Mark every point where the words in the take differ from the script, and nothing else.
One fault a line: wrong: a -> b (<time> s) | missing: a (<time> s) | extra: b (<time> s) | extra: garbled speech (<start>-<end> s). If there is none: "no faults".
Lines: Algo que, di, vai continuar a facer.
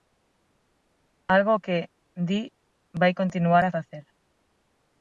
no faults